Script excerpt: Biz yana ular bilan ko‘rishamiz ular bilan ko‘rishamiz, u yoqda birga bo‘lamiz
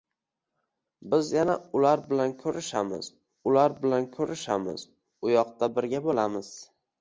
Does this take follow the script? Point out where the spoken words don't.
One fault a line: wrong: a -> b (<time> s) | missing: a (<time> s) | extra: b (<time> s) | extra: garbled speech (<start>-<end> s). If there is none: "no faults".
no faults